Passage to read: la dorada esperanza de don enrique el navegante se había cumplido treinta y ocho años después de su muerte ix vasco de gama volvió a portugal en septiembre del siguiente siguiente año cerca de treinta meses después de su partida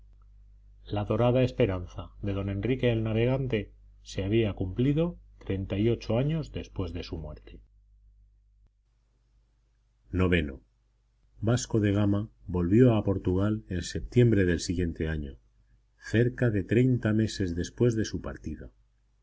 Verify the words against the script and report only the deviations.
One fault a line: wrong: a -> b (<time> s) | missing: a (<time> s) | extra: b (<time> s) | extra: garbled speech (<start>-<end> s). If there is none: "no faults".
missing: siguiente (15.1 s)